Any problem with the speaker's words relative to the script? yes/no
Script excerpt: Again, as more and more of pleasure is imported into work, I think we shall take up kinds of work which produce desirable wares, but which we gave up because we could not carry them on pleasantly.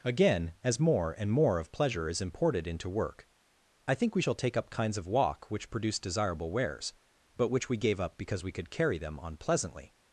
yes